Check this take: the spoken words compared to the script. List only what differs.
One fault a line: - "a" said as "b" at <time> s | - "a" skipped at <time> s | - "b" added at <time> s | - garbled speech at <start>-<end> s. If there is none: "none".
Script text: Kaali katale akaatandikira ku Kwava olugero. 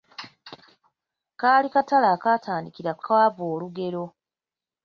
none